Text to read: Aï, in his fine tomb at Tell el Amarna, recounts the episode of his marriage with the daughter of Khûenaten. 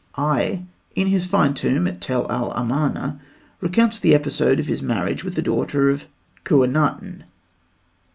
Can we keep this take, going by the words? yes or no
yes